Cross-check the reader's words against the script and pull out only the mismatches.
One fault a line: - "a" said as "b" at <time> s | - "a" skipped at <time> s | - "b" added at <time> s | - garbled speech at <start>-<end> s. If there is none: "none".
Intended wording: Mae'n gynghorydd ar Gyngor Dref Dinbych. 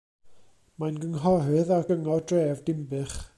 none